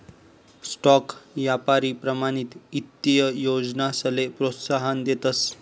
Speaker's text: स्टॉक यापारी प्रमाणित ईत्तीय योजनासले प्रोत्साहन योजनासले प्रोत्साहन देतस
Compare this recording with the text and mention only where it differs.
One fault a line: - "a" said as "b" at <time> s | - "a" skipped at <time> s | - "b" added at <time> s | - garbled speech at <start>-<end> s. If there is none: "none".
- "योजनासले प्रोत्साहन" skipped at 5.0 s